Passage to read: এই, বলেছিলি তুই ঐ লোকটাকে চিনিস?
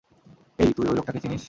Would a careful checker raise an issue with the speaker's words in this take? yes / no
yes